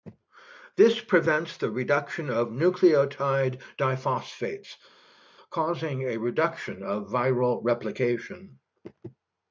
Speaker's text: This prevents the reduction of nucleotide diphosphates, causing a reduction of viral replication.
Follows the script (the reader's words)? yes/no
yes